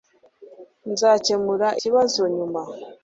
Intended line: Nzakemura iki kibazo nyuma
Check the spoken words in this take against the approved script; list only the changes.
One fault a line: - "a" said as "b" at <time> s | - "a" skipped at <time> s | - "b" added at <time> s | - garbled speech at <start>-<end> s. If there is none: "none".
- "iki" skipped at 1.7 s